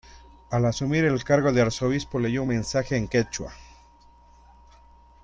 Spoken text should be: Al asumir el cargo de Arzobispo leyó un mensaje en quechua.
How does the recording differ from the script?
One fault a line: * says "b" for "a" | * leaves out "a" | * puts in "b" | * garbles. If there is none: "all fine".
all fine